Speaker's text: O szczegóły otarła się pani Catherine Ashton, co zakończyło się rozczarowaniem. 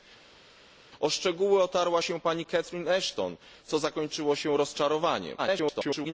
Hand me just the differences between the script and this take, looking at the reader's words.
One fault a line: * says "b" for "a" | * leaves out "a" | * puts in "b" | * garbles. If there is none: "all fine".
* garbles